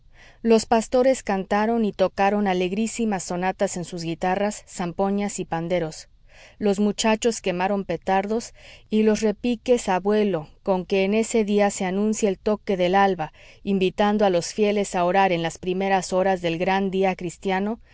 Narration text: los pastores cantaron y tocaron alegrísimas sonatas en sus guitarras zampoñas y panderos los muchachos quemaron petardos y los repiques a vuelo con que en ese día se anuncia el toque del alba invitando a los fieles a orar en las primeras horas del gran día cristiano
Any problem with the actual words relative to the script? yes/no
no